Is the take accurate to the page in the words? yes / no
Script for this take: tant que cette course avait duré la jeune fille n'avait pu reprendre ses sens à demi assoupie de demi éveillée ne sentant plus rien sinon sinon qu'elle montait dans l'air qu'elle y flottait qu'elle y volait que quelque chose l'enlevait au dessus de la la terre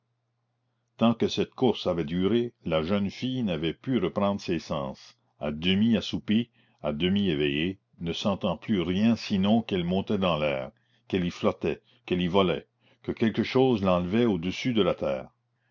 no